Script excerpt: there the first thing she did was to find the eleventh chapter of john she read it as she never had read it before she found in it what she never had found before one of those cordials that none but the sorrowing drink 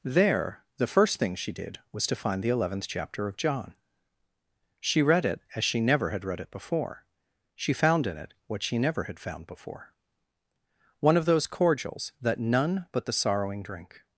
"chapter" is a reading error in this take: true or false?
false